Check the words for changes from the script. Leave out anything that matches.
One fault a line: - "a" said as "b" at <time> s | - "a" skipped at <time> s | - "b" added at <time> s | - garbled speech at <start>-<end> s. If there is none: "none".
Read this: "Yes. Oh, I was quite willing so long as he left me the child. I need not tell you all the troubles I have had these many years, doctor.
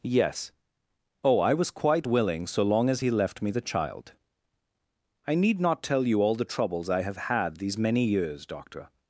none